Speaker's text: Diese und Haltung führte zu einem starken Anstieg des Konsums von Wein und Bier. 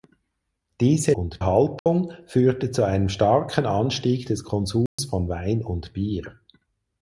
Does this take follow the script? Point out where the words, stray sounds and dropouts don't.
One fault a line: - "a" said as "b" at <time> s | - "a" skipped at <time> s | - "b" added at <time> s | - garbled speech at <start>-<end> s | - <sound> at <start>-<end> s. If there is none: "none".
- dropout at 1.8-1.9 s
- dropout at 4.9-5.0 s